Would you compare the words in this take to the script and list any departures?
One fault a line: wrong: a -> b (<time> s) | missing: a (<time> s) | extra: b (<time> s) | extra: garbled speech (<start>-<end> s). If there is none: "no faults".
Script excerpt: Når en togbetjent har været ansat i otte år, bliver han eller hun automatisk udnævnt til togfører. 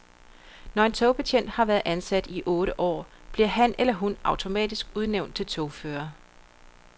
no faults